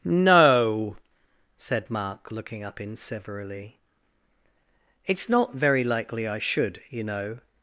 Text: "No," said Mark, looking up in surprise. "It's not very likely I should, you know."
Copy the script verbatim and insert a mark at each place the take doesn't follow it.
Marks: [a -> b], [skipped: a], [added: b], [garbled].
"No," said Mark, looking up in [surprise. -> severally] "It's not very likely I should, you know."